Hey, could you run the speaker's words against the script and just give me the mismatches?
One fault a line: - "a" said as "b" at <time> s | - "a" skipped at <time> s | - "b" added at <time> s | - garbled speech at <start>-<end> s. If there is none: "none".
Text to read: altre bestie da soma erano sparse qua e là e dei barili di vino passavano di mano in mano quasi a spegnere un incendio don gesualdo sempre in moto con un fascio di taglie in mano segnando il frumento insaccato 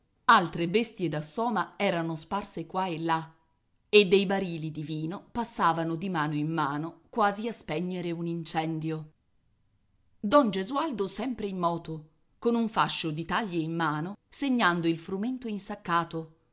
none